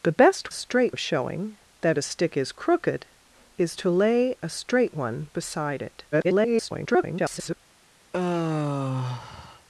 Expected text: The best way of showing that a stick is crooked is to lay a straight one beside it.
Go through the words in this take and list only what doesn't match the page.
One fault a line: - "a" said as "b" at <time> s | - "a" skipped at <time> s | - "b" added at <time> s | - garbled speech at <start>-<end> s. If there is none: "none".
- "way" said as "straight" at 0.5 s
- garbled speech at 6.1-7.6 s